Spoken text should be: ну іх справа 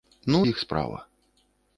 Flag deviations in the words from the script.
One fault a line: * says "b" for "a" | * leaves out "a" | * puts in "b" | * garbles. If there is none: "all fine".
all fine